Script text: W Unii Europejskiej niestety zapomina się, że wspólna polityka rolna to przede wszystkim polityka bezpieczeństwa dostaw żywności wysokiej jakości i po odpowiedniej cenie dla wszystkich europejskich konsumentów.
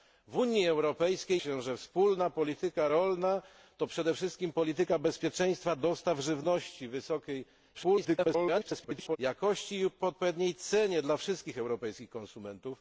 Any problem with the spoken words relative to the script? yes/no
yes